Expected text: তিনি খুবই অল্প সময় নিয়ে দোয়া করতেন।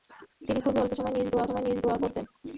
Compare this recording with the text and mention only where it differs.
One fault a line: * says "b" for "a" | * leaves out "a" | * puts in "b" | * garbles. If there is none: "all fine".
* puts in "সময় নিয়ে দোয়া"